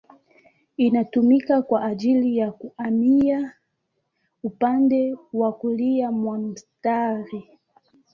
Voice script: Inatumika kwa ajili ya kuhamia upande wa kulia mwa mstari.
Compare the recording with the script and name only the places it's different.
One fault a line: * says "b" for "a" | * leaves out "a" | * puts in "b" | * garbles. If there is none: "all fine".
all fine